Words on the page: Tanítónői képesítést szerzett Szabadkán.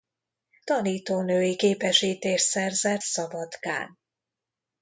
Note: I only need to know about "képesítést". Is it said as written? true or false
true